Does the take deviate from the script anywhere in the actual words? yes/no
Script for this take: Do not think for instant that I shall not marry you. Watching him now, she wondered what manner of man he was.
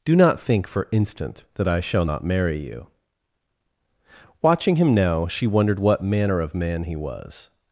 no